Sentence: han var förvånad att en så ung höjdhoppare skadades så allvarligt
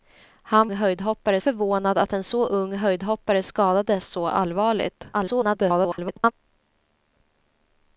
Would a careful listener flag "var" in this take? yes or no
yes